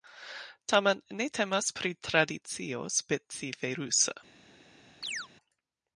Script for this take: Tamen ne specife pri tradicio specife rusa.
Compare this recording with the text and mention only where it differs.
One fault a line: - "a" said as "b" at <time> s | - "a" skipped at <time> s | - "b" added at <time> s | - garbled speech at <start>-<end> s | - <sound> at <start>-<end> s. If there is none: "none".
- "specife" said as "temas" at 1.4 s
- chirp at 5.0-5.3 s